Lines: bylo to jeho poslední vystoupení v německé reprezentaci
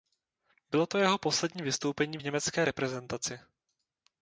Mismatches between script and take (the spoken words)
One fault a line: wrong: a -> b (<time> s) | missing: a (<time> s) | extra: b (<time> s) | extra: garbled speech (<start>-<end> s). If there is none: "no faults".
no faults